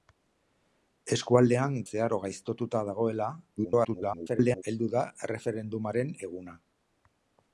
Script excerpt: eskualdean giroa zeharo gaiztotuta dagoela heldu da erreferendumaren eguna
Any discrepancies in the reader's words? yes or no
yes